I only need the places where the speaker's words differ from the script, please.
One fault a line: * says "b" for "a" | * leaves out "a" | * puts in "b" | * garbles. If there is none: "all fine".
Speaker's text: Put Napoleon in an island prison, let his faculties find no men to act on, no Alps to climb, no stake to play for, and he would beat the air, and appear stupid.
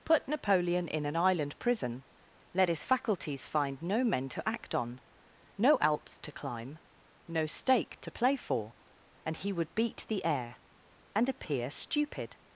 all fine